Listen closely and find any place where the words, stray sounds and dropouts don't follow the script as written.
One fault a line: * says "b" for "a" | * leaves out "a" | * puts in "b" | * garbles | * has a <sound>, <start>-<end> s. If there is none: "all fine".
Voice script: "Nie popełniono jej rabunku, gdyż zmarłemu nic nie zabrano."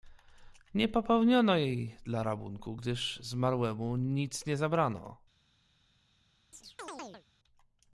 * puts in "dla"
* has a chirp, 6.5-7.3 s